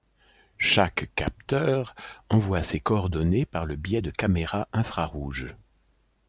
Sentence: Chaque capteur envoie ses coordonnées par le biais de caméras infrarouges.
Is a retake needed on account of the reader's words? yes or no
no